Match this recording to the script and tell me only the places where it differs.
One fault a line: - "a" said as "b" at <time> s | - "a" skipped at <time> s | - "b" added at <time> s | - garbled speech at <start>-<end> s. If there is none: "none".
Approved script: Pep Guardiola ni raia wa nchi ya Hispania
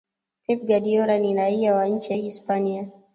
none